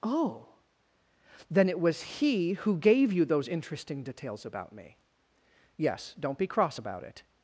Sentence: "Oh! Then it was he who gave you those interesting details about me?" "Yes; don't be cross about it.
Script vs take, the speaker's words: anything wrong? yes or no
no